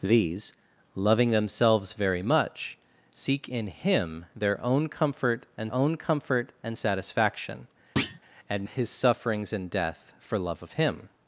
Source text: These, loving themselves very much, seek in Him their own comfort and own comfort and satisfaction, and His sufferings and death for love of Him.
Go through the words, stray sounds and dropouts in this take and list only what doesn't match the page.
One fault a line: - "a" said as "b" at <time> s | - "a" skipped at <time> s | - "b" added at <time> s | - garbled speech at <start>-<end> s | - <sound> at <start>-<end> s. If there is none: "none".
- thud at 8.0-8.2 s